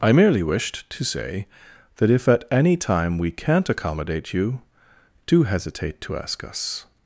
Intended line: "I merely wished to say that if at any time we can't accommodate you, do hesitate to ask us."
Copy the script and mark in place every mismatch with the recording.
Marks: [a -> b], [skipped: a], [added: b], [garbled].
"I merely wished to say that if at any time we can't accommodate you, do hesitate to ask us."